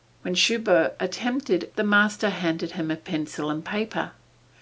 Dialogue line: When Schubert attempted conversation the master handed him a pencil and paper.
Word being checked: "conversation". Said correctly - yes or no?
no